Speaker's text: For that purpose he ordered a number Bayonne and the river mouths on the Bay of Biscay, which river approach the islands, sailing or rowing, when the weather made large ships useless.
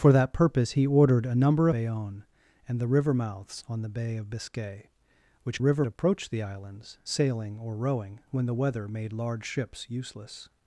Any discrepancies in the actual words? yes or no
no